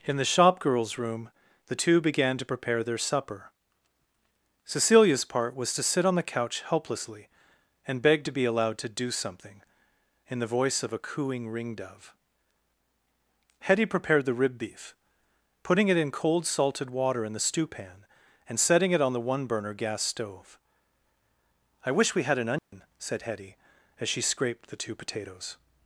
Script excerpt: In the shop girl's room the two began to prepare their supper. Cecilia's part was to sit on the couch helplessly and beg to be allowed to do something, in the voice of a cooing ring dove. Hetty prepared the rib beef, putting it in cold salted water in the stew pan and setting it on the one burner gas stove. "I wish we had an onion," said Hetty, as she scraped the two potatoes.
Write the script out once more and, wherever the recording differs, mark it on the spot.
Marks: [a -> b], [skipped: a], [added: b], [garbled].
In the shop girl's room the two began to prepare their supper. Cecilia's part was to sit on the couch helplessly and beg to be allowed to do something, in the voice of a cooing ring dove. Hetty prepared the rib beef, putting it in cold salted water in the stew pan and setting it on the one burner gas stove. "I wish we had an onion," said Hetty, as she scraped the two potatoes.